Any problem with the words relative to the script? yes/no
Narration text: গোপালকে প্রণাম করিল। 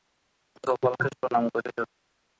no